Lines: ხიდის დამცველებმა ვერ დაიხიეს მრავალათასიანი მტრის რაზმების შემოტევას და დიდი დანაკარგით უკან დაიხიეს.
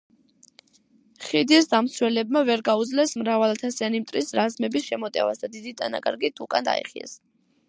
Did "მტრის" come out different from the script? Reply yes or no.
no